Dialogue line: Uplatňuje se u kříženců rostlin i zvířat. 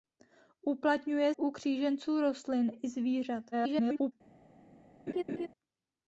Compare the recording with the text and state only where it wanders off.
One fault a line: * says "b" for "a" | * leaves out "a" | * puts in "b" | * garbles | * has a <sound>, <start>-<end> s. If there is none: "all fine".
* leaves out "se"
* garbles
* has a laugh, 5.1-5.5 s